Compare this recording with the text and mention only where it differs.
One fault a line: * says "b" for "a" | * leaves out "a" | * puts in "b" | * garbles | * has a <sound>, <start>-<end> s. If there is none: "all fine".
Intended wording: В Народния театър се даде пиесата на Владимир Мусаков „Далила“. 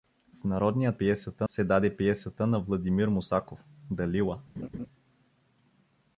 * says "пиесата" for "театър"
* has a laugh, 4.6-4.9 s